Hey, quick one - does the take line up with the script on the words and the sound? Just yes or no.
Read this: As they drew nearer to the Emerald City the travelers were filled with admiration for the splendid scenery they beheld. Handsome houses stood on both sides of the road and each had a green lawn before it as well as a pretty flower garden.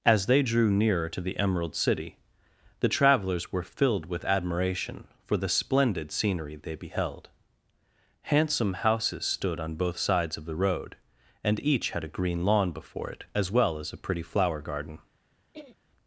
no